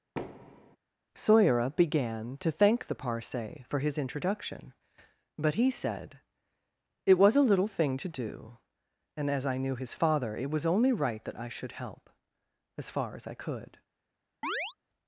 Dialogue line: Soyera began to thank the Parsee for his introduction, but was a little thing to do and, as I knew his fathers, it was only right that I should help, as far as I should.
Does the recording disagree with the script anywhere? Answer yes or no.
yes